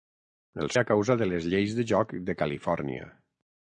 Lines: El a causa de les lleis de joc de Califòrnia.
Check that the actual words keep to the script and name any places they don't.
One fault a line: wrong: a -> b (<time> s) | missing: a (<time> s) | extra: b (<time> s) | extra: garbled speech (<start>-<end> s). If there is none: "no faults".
no faults